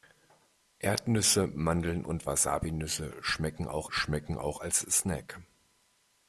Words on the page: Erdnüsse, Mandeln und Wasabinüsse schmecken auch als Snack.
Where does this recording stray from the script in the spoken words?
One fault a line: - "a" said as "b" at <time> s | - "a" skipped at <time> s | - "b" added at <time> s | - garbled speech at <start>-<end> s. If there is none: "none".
- "schmecken auch" added at 3.9 s